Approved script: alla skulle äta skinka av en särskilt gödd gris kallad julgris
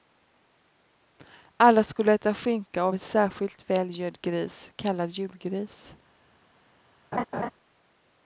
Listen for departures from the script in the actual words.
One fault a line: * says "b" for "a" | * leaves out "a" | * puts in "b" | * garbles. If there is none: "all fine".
* puts in "väl"